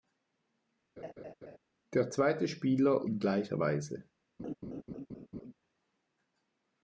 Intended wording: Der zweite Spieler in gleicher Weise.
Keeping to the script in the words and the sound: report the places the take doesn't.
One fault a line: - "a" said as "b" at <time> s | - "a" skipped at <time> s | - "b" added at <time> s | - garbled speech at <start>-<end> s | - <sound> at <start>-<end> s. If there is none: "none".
- laugh at 1.0-1.6 s
- laugh at 4.4-5.5 s